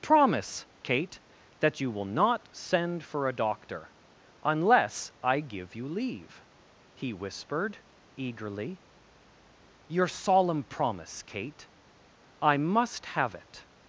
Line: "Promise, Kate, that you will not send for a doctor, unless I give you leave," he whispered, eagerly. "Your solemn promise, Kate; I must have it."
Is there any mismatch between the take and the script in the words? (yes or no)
no